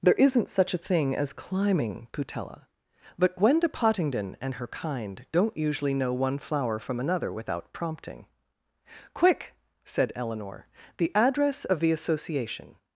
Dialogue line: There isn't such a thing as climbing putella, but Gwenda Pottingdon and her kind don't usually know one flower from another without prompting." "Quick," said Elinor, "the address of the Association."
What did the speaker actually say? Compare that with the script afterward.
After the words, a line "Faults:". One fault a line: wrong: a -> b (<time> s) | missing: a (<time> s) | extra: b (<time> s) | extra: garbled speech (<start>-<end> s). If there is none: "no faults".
There isn't such a thing as climbing putella, but Gwenda Pottingdon and her kind don't usually know one flower from another without prompting." "Quick," said Elinor, "the address of the Association."
Faults:
no faults